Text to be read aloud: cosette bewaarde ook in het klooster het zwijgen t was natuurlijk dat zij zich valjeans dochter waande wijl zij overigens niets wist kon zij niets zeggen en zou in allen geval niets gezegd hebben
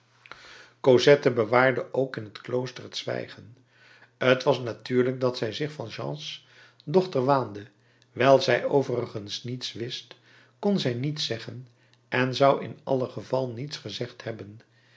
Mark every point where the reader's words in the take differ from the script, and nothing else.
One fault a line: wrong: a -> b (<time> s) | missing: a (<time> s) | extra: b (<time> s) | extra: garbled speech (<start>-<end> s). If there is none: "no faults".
no faults